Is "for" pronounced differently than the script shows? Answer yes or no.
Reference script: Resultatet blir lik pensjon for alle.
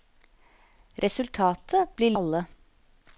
yes